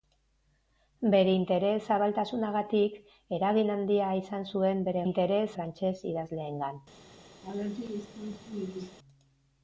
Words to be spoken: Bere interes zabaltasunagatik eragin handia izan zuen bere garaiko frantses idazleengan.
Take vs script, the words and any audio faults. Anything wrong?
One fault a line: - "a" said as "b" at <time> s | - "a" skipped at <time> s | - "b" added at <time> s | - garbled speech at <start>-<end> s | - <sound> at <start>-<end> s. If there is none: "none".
- "garaiko" said as "interes" at 5.1 s
- laugh at 7.4-9.0 s